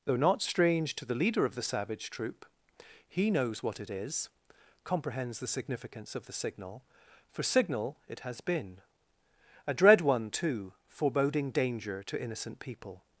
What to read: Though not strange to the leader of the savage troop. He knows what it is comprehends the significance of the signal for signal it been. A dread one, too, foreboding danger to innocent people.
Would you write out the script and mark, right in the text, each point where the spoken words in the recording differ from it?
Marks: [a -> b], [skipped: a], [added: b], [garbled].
Though not strange to the leader of the savage troop. He knows what it is comprehends the significance of the signal for signal it [added: has] been. A dread one, too, foreboding danger to innocent people.